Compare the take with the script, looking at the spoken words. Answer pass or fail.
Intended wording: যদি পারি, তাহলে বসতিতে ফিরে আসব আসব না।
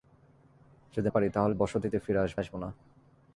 pass